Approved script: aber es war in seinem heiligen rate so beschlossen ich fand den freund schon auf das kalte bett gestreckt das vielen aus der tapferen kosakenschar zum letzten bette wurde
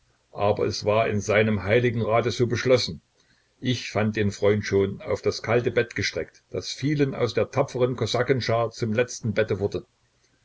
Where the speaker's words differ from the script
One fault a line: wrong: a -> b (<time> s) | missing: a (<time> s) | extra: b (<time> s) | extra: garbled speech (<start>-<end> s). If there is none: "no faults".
no faults